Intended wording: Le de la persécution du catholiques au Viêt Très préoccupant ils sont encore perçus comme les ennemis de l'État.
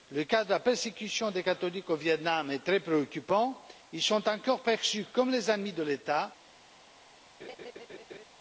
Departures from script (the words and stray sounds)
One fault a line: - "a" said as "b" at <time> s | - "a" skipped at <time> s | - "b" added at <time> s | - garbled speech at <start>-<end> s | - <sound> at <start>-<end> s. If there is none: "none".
- "cas" added at 0.2 s
- "du" said as "des" at 1.3 s
- "Nam est" added at 2.2 s
- laugh at 7.4-8.3 s